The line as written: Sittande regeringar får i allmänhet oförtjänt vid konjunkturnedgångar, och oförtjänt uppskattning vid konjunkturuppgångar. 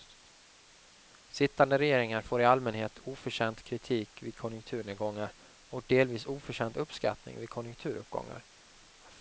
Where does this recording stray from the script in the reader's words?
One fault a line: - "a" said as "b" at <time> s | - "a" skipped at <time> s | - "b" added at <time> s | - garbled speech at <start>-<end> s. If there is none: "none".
- "kritik" added at 3.6 s
- "delvis" added at 5.9 s